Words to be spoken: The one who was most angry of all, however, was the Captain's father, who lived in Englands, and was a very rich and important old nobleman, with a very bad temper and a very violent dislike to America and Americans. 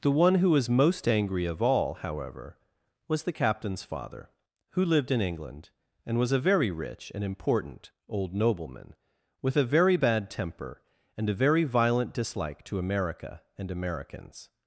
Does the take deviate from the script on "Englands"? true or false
true